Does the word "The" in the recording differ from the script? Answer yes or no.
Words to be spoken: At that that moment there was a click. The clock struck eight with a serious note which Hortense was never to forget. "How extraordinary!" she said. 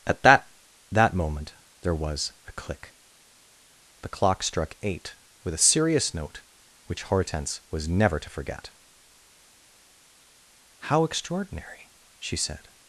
no